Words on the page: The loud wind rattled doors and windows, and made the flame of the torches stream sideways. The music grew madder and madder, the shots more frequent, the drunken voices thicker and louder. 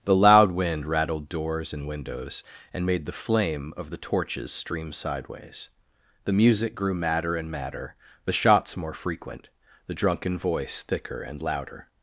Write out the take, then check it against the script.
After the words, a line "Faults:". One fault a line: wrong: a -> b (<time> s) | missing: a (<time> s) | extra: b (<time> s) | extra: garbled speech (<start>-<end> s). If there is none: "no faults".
The loud wind rattled doors and windows, and made the flame of the torches stream sideways. The music grew madder and madder, the shots more frequent, the drunken voice thicker and louder.
Faults:
wrong: voices -> voice (10.4 s)